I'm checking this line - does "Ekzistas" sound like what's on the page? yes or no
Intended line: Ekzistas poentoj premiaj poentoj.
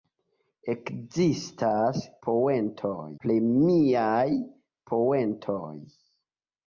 yes